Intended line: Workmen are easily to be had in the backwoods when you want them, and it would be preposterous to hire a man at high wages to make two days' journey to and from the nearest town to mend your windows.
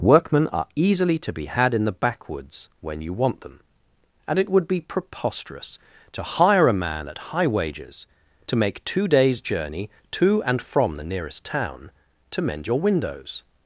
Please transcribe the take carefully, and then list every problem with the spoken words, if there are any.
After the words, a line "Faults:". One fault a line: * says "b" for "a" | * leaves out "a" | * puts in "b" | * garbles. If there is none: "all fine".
Workmen are easily to be had in the backwoods when you want them, and it would be preposterous to hire a man at high wages to make two days' journey to and from the nearest town to mend your windows.
Faults:
all fine